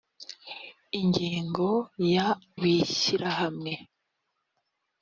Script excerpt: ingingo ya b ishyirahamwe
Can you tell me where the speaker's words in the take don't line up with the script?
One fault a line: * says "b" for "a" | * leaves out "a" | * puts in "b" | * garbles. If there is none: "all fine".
all fine